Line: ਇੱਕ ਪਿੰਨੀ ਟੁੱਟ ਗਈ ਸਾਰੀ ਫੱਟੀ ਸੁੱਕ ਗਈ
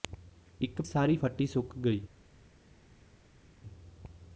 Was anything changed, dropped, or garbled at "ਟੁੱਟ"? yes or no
yes